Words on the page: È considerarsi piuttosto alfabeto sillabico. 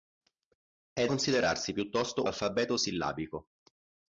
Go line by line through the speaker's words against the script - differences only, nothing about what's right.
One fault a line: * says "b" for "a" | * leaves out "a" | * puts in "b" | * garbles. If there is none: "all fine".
all fine